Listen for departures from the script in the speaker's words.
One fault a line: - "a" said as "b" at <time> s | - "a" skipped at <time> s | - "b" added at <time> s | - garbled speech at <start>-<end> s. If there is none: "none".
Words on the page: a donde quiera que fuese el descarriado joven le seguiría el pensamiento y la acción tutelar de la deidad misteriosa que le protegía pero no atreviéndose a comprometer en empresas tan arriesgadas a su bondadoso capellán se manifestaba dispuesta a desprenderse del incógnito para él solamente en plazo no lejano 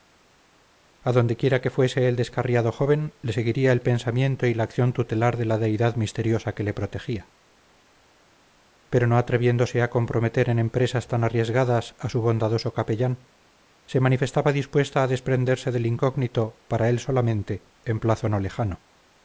none